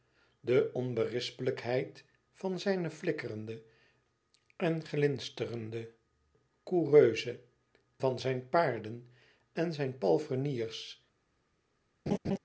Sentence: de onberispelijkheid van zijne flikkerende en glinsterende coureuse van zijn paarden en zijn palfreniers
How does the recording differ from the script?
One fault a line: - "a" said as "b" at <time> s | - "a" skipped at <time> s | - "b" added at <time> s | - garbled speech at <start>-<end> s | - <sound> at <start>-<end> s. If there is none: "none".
- laugh at 12.1-12.4 s